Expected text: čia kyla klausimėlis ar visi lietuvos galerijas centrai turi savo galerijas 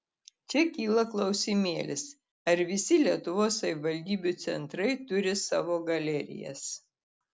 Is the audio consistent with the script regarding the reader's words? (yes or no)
no